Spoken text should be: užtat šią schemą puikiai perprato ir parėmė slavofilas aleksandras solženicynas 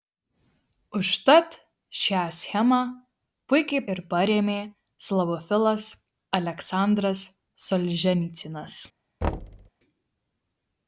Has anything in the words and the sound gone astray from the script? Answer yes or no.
yes